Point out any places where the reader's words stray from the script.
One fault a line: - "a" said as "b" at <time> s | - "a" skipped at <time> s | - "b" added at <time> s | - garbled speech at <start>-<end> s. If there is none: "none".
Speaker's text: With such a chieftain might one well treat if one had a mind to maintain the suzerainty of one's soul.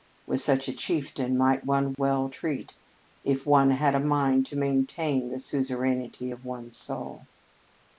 none